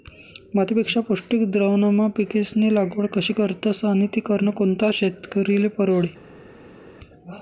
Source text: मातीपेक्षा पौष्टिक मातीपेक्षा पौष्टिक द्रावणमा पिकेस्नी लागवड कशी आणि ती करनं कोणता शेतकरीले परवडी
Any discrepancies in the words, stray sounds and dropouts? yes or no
yes